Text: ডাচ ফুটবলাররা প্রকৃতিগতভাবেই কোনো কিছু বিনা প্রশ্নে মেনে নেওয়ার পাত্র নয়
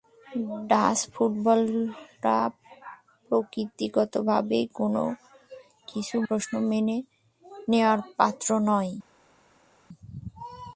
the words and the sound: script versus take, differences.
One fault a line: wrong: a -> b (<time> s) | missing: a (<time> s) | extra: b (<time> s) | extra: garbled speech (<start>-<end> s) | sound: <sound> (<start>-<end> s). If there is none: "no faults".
missing: বিনা (6.2 s)